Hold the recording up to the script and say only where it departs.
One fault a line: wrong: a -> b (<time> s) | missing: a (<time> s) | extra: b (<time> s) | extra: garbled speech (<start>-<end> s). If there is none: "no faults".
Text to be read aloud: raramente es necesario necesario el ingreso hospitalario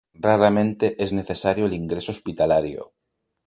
missing: necesario (1.7 s)